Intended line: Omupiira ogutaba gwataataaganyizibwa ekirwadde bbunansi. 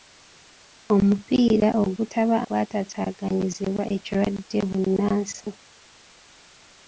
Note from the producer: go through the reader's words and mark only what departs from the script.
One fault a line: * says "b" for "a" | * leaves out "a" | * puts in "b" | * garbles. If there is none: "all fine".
all fine